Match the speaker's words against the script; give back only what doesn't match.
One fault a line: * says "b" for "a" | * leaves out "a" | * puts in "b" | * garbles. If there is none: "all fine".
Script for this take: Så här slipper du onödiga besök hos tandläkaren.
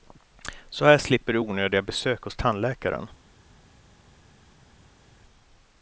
all fine